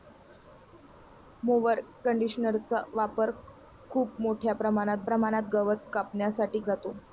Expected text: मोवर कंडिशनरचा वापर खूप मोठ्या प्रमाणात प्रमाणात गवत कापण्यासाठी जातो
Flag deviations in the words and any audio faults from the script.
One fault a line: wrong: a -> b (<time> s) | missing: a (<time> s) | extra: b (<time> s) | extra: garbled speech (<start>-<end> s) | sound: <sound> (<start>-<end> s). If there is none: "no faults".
no faults